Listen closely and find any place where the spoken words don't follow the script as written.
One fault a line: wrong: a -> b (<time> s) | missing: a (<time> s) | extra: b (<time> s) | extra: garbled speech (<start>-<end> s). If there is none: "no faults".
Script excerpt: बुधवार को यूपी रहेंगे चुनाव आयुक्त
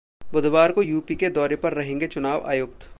extra: के दौरे पर (1.1 s)